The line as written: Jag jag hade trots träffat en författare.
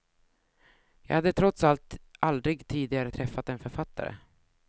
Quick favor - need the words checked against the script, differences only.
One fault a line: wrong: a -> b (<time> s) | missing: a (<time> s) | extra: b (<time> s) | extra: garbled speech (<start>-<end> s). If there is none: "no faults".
missing: jag (1.1 s)
extra: allt aldrig tidigare (1.6 s)